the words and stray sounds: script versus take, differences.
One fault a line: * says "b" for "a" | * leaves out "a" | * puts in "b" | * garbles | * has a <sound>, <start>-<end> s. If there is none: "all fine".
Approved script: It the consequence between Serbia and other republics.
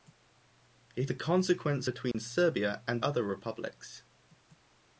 * has a dropout, 2.1-2.1 s